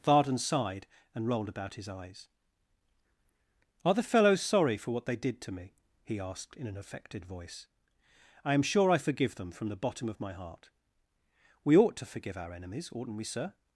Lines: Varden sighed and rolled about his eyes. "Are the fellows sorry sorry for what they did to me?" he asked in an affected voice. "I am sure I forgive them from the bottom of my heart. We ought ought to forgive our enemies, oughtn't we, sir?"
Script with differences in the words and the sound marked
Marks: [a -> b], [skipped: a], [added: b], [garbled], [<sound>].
Varden sighed and rolled about his eyes. "Are the fellows sorry [skipped: sorry] for what they did to me?" he asked in an affected voice. "I am sure I forgive them from the bottom of my heart. We ought [skipped: ought] to forgive our enemies, oughtn't we, sir?"